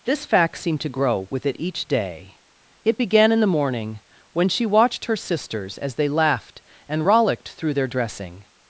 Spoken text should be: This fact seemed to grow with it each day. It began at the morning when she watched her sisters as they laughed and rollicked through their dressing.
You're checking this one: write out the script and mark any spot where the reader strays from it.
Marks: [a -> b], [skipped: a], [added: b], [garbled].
This fact seemed to grow with it each day. It began [at -> in] the morning when she watched her sisters as they laughed and rollicked through their dressing.